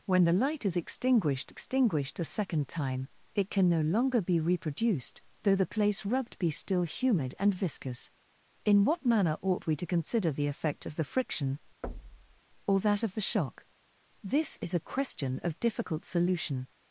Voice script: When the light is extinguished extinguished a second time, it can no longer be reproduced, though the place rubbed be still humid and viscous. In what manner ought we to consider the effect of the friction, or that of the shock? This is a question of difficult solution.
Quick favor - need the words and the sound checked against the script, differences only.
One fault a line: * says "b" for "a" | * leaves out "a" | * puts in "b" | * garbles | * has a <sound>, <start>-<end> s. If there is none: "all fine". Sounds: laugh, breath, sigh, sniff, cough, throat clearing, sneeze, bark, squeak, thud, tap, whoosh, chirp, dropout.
* has a thud, 11.8-12.4 s